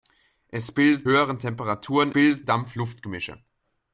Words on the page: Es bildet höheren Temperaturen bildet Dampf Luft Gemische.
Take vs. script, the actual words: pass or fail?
pass